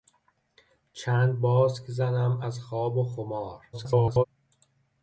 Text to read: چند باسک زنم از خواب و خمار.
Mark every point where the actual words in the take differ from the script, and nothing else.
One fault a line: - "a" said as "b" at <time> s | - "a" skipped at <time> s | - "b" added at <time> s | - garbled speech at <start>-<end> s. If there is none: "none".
- garbled speech at 3.7-4.2 s